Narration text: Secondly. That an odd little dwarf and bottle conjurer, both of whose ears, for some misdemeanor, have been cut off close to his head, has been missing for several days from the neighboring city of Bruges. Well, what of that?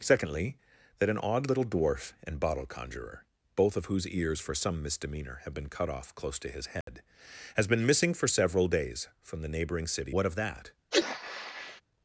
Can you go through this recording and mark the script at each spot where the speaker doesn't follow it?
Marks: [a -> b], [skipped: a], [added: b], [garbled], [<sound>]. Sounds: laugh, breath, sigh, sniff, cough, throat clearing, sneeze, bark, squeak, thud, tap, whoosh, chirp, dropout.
Secondly. That an odd little dwarf and bottle conjurer, both of whose ears, for some misdemeanor, have been cut off close to his head, [dropout] has been missing for several days from the neighboring city [skipped: of Bruges. Well,] what of that? [sneeze]